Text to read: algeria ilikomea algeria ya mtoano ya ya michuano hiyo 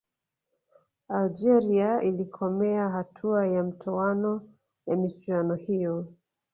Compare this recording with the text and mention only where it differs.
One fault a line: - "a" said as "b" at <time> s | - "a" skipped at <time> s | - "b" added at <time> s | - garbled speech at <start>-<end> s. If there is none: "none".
- "algeria" said as "hatua" at 2.9 s
- "ya" skipped at 5.0 s